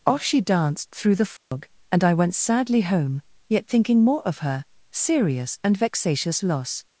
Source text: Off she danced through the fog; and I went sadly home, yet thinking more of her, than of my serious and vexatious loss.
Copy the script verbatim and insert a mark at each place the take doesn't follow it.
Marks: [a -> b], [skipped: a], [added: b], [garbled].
Off she danced through the fog; and I went sadly home, yet thinking more of her, [skipped: than of my] serious and vexatious loss.